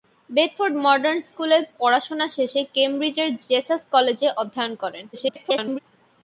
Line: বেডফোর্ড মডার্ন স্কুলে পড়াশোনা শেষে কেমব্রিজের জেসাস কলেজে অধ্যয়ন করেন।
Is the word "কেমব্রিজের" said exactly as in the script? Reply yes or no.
yes